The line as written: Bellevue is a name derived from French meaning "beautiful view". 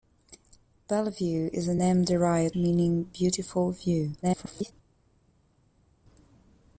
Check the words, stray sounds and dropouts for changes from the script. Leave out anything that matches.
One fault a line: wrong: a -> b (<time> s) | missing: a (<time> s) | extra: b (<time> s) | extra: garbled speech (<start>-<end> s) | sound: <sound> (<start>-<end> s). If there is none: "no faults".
missing: from French (2.6 s)
extra: garbled speech (4.2-4.7 s)